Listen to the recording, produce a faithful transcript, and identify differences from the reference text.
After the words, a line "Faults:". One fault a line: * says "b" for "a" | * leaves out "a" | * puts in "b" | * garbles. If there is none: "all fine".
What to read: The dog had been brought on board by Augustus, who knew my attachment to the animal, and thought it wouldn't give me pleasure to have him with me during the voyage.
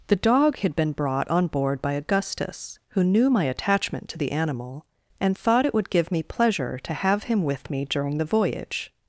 The dog had been brought on board by Augustus, who knew my attachment to the animal, and thought it would give me pleasure to have him with me during the voyage.
Faults:
* says "would" for "wouldn't"